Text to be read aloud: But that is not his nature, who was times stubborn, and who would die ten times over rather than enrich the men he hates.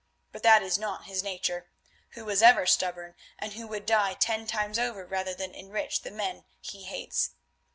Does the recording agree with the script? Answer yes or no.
no